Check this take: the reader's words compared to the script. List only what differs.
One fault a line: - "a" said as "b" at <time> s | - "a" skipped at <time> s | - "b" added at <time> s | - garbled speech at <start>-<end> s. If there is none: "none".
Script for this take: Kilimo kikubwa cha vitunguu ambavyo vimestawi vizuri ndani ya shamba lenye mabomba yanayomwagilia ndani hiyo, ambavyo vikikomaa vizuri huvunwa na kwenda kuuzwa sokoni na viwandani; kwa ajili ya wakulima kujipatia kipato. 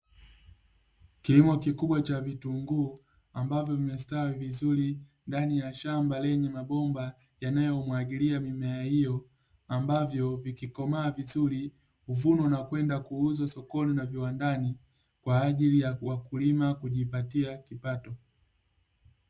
- "ndani" said as "mimea" at 8.4 s